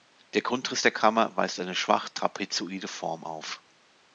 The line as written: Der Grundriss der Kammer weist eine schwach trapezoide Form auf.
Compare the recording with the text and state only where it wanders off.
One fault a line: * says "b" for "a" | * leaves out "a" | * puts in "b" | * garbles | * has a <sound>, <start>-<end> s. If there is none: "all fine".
all fine